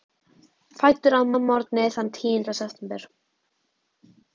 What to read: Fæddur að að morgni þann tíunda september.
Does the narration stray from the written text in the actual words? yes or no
no